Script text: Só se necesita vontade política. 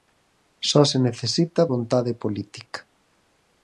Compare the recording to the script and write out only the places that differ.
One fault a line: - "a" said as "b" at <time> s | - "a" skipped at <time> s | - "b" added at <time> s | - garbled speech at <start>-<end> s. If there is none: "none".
none